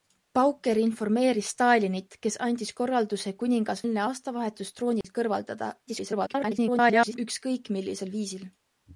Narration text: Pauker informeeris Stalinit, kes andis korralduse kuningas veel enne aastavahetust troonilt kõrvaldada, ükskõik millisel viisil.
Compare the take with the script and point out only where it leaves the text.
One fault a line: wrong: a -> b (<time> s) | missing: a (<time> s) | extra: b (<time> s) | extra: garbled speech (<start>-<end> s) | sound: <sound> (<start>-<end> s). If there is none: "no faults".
missing: veel (3.9 s)
sound: dropout (5.0-5.0 s)
extra: garbled speech (5.9-7.2 s)